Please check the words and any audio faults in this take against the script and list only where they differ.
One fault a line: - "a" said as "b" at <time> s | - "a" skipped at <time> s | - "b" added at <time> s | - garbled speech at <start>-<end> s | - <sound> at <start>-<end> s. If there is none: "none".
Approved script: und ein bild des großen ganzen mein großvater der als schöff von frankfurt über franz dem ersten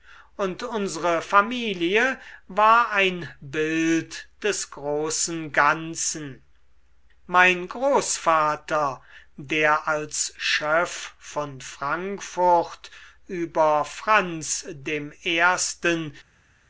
- "unsere familie war" added at 0.6 s